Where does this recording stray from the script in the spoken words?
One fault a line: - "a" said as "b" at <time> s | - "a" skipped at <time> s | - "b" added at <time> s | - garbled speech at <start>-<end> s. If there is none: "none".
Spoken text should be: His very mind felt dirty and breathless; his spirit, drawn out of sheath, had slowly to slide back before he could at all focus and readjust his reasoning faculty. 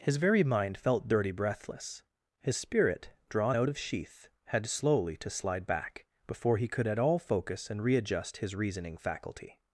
- "and" skipped at 1.3 s